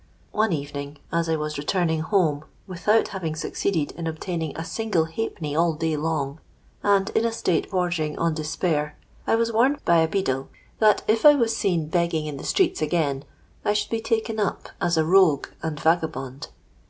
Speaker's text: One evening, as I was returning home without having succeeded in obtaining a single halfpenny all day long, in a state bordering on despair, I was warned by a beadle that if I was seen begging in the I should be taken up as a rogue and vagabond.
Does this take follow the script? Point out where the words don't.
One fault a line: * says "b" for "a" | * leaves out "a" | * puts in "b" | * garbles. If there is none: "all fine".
* puts in "and"
* puts in "streets again"